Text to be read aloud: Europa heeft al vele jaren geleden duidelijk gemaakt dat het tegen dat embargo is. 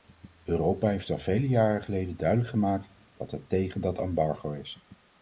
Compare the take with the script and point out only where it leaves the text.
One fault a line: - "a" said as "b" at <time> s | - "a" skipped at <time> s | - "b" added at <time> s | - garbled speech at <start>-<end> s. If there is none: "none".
none